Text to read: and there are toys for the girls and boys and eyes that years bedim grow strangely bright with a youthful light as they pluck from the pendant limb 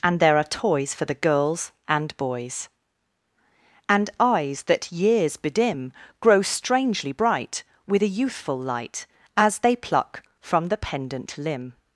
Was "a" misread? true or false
false